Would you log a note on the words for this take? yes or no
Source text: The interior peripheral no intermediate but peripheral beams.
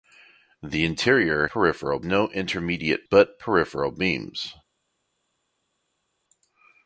no